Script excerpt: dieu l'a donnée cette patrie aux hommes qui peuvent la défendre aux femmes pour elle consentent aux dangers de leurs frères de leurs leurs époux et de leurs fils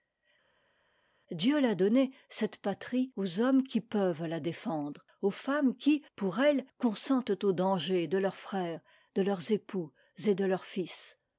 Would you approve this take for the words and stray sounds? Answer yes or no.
no